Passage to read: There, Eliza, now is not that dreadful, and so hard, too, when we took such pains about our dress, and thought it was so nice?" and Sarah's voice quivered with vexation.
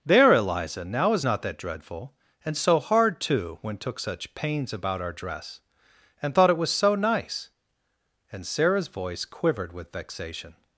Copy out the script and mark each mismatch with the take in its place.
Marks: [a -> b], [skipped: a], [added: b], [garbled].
There, Eliza, now is not that dreadful, and so hard, too, when [skipped: we] took such pains about our dress, and thought it was so nice?" and Sarah's voice quivered with vexation.